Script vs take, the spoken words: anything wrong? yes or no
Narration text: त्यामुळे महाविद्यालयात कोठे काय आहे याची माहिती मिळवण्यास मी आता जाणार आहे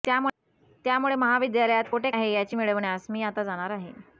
yes